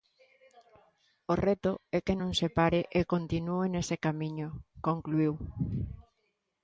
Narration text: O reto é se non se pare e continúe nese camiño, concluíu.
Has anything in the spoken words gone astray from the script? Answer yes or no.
yes